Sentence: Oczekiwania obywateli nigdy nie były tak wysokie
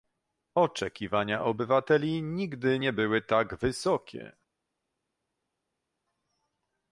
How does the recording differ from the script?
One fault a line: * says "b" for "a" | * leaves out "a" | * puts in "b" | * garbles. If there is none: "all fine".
all fine